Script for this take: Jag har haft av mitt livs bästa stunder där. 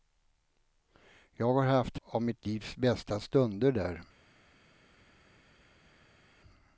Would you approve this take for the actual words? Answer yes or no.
yes